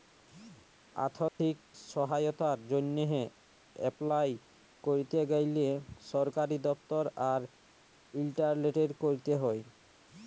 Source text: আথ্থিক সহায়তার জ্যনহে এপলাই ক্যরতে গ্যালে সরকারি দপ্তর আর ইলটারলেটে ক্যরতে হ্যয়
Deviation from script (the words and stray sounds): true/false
true